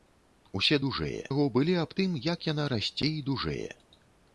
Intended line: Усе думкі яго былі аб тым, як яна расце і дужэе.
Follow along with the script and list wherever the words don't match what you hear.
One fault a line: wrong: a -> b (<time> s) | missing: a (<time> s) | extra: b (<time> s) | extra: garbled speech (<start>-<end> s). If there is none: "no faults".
wrong: думкі -> дужэе (0.9 s)